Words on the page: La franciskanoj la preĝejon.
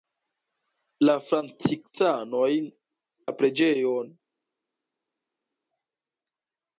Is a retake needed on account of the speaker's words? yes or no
no